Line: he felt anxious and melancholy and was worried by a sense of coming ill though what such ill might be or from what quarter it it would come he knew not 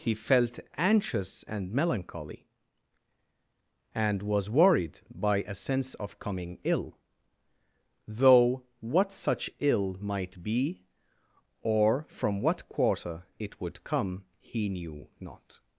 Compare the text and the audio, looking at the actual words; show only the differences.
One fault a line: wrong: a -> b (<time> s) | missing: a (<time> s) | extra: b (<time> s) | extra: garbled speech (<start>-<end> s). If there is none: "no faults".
missing: it (13.6 s)